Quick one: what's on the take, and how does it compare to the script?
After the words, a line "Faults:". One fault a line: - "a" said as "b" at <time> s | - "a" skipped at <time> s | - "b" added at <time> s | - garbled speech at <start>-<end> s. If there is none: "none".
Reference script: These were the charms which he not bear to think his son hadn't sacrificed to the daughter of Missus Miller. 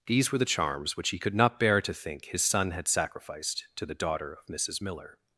These were the charms which he could not bear to think his son had sacrificed to the daughter of Missus Miller.
Faults:
- "could" added at 1.2 s
- "hadn't" said as "had" at 2.7 s